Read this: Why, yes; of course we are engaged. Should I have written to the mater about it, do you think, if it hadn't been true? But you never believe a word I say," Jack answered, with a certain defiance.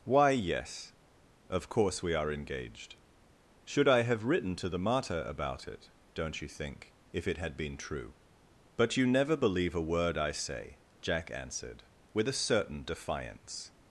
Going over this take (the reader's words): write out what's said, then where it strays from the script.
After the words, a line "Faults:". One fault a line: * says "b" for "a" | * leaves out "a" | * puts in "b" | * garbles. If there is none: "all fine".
Why, yes; of course we are engaged. Should I have written to the mater about it, don't you think, if it had been true? But you never believe a word I say," Jack answered, with a certain defiance.
Faults:
* says "don't" for "do"
* says "had" for "hadn't"